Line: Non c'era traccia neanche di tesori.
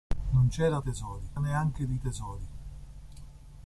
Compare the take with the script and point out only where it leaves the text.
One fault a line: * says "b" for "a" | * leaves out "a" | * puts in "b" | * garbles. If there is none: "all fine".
* says "tesori" for "traccia"